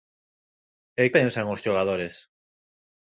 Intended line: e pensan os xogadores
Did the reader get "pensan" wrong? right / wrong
right